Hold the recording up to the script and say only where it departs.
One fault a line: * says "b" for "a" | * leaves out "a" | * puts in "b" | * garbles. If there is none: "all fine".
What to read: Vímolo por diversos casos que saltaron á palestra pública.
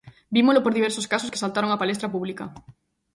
all fine